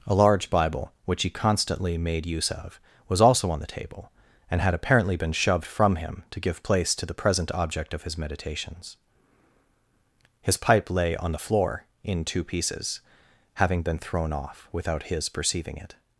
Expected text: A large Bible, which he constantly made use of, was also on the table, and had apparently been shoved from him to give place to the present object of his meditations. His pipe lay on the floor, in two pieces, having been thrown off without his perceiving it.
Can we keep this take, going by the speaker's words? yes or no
yes